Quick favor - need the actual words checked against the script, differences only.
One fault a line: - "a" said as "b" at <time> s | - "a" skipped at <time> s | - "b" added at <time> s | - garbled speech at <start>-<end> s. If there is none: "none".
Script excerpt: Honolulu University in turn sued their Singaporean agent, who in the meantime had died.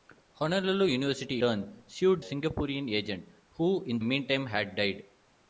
- "in" skipped at 1.4 s
- "their" skipped at 2.2 s
- "the" skipped at 4.0 s